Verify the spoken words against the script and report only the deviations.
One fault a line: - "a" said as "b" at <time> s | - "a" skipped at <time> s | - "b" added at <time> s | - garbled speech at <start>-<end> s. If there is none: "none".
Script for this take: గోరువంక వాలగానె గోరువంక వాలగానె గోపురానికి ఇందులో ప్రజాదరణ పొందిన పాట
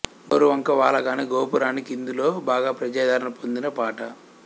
- "గోరువంక వాలగానె" skipped at 1.2 s
- "బాగా" added at 2.5 s